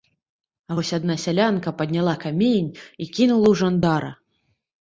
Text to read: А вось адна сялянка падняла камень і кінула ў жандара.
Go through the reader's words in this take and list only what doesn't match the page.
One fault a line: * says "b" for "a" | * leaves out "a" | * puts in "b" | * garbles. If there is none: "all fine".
all fine